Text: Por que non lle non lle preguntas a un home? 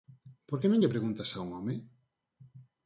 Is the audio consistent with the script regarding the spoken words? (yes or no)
no